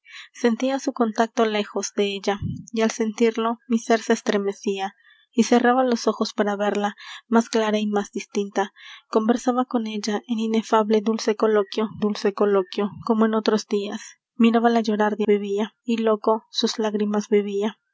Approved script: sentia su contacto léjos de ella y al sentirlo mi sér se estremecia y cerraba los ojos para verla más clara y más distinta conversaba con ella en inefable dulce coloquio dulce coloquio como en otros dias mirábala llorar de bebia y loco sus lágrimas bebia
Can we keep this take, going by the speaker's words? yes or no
yes